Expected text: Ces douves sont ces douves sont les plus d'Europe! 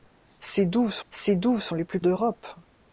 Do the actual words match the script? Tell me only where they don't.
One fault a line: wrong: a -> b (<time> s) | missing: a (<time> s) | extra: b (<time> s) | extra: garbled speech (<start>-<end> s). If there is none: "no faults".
no faults